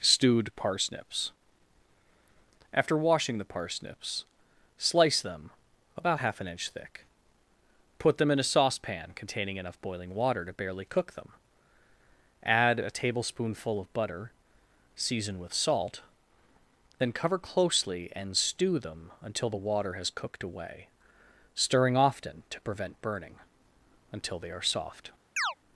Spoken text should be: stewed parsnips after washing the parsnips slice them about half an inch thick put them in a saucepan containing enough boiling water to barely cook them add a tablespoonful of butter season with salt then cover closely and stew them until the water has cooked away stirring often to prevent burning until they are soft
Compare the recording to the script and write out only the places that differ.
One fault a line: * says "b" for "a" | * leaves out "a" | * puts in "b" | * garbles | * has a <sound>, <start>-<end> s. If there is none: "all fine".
* has a chirp, 25.4-25.5 s